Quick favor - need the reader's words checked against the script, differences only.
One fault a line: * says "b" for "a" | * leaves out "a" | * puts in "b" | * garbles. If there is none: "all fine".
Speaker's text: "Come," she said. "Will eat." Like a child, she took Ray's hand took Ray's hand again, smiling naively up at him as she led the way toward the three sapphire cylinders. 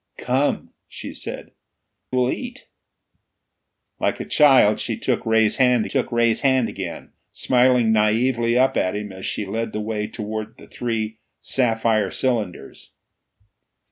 all fine